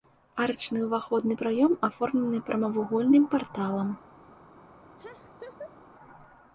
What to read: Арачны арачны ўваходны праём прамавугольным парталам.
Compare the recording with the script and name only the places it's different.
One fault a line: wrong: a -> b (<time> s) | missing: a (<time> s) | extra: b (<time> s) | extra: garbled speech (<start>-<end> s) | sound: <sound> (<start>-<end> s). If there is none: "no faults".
missing: арачны (0.8 s)
extra: аформлены (1.9 s)
sound: laugh (5.0-5.8 s)